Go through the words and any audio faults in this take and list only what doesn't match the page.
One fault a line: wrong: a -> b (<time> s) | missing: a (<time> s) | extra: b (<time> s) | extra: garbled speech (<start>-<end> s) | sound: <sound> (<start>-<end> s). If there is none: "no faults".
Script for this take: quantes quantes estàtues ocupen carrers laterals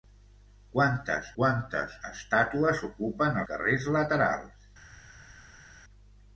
no faults